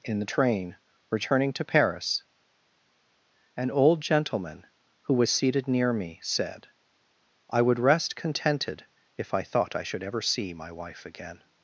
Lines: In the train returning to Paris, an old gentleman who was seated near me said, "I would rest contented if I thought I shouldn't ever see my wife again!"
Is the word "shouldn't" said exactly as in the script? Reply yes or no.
no